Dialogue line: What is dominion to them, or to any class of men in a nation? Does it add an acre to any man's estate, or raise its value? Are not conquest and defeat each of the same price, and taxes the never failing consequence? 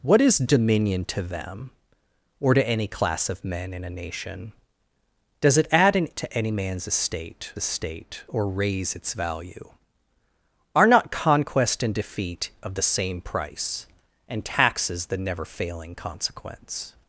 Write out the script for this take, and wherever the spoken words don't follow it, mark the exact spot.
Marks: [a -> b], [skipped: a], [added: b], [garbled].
What is dominion to them, or to any class of men in a nation? Does it add an [skipped: acre] to any man's estate, [added: estate] or raise its value? Are not conquest and defeat [skipped: each] of the same price, and taxes the never failing consequence?